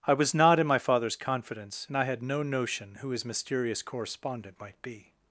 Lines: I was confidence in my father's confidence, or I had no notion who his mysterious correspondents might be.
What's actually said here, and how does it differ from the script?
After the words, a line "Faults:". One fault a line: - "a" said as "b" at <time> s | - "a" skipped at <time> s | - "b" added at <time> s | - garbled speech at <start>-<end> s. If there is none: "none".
I was not in my father's confidence, and I had no notion who his mysterious correspondent might be.
Faults:
- "confidence" said as "not" at 0.3 s
- "or" said as "and" at 1.9 s
- "correspondents" said as "correspondent" at 3.8 s